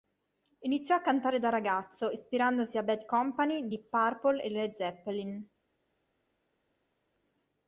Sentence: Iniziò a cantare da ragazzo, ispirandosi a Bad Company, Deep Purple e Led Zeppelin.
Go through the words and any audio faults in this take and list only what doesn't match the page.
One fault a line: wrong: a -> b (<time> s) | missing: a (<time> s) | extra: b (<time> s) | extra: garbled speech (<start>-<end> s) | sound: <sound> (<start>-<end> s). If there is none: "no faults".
no faults